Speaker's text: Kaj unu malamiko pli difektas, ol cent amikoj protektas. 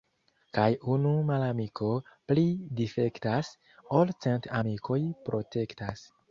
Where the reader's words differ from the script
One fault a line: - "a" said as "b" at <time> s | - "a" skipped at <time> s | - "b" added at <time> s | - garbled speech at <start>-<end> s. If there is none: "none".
none